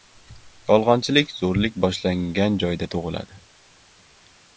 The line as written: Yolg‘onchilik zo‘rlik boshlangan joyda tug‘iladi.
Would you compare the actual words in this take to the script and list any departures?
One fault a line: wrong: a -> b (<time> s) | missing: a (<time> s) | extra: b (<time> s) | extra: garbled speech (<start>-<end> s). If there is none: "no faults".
no faults